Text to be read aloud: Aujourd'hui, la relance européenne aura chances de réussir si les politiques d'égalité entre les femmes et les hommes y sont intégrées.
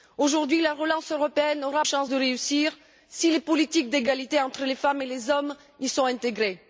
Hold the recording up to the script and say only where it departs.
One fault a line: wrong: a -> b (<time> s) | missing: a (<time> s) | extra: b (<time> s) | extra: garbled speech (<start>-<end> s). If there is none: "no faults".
no faults